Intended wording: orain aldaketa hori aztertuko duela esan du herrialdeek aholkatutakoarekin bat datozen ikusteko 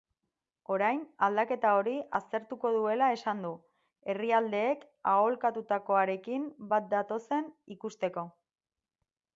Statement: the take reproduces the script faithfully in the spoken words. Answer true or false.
true